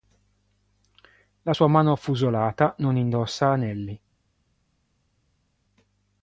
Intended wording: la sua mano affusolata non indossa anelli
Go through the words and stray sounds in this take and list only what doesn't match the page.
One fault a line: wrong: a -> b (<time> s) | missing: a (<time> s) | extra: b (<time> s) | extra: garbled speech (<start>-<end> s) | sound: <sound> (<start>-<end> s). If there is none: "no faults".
no faults